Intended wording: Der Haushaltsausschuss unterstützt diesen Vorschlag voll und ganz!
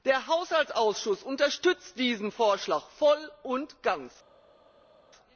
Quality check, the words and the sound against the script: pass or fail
pass